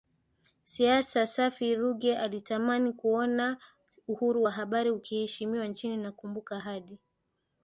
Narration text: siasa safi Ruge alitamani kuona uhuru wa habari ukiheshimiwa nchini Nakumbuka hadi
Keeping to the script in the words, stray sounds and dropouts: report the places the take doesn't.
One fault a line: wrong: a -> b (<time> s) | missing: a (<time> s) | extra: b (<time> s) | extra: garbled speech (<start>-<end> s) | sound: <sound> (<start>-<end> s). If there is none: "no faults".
no faults